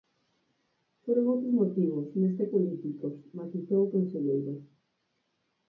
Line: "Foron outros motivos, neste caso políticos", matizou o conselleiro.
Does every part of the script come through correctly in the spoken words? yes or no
no